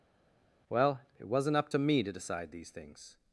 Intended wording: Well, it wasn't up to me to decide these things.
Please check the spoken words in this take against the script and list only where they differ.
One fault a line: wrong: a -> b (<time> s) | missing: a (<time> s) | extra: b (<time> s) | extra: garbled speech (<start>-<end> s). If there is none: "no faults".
no faults